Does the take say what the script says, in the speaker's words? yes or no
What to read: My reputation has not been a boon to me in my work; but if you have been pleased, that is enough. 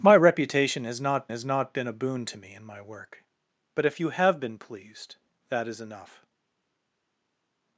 no